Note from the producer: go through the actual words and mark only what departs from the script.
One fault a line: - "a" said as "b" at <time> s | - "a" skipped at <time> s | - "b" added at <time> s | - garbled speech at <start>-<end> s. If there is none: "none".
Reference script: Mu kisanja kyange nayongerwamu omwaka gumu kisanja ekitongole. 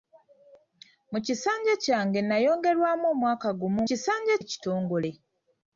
none